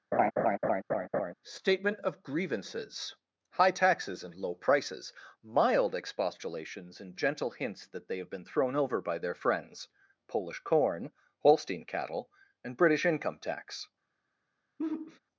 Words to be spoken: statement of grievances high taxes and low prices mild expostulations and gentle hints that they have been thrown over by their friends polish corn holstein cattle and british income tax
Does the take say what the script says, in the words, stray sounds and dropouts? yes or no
no